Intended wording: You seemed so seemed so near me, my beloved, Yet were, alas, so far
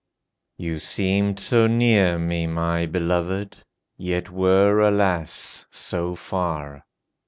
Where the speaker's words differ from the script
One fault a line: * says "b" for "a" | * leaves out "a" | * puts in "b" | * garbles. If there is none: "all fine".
* leaves out "seemed so"